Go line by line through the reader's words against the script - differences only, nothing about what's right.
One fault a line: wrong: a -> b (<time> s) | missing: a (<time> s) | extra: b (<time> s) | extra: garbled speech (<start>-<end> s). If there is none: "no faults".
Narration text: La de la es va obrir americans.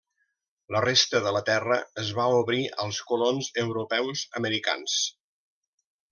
extra: resta (0.8 s)
extra: terra (1.5 s)
extra: als colons europeus (2.9 s)